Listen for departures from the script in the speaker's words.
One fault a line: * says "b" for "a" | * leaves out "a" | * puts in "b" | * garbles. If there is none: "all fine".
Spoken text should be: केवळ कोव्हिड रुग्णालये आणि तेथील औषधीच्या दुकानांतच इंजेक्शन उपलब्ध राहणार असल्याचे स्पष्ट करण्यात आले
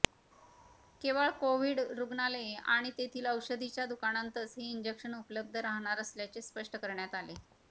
* puts in "हे"